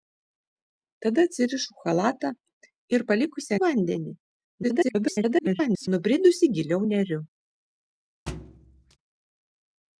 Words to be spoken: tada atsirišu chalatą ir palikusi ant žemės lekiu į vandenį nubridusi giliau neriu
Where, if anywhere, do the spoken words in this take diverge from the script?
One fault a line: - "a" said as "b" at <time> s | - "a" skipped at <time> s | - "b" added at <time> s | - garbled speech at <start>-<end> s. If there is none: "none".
- "ant žemės lekiu" skipped at 3.5 s
- garbled speech at 4.6-5.9 s